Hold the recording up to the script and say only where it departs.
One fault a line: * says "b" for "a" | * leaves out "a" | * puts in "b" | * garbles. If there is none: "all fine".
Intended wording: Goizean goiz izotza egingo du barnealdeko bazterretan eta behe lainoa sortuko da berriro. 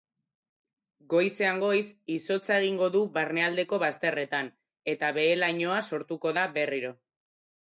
all fine